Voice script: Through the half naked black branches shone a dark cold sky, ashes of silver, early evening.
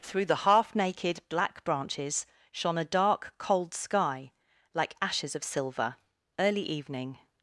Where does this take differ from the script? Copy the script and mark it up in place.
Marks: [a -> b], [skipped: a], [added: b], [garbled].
Through the half naked black branches shone a dark cold sky, [added: like] ashes of silver, early evening.